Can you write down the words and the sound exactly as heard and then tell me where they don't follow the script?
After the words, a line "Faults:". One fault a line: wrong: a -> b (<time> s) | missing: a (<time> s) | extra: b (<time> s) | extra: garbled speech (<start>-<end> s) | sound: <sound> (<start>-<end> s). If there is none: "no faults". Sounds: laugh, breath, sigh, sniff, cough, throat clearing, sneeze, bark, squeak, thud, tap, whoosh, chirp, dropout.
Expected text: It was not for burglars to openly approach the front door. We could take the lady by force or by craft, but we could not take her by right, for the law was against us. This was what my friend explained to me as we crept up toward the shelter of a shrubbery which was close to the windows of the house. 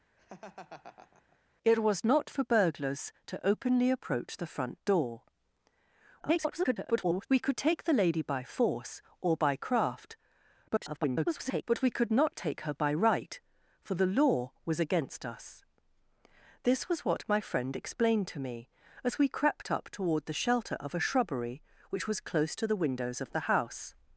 It was not for burglars to openly approach the front door. [garbled] We could take the lady by force or by craft, [garbled] but we could not take her by right, for the law was against us. This was what my friend explained to me as we crept up toward the shelter of a shrubbery which was close to the windows of the house.
Faults:
sound: laugh (0.2-1.4 s)
extra: garbled speech (6.2-7.3 s)
extra: garbled speech (10.7-11.6 s)